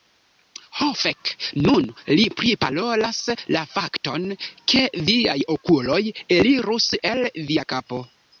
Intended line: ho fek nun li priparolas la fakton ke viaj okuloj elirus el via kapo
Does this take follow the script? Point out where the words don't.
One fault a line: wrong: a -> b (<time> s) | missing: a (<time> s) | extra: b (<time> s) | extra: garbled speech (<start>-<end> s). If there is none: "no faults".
no faults